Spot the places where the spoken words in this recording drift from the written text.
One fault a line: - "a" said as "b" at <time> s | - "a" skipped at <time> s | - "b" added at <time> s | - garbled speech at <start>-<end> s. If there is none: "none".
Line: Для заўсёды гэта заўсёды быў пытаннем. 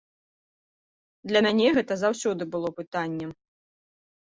- "заўсёды" said as "мяне" at 1.5 s
- "быў" said as "было" at 2.5 s